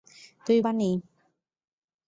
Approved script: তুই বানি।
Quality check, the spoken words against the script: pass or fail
pass